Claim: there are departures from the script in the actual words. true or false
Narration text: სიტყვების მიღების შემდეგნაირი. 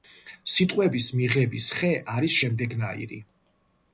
true